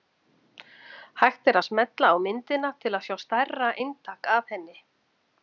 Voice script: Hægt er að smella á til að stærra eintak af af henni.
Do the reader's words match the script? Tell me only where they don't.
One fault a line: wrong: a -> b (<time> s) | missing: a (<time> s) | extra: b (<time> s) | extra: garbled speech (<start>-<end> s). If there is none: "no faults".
extra: myndina (2.3 s)
extra: sjá (3.1 s)
missing: af (4.5 s)